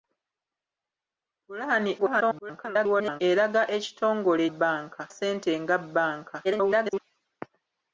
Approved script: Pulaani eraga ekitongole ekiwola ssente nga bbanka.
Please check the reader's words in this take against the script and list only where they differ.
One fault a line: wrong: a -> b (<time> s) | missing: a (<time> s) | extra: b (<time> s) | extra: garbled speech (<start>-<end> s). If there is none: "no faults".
extra: garbled speech (2.0-3.2 s)
wrong: ekiwola -> bbanka (4.5 s)
extra: garbled speech (6.4-7.0 s)